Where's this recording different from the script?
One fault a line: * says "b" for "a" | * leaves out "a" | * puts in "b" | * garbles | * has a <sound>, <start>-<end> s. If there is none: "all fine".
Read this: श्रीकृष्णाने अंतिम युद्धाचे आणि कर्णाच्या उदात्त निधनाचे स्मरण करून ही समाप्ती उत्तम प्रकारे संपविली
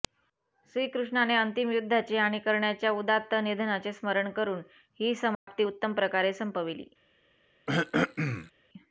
* has a dropout, 5.3-5.5 s
* has a throat clearing, 7.7-8.5 s